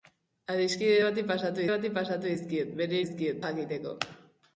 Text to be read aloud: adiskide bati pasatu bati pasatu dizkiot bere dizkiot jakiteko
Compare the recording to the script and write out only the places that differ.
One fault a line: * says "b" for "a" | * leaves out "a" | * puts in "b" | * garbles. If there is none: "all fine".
all fine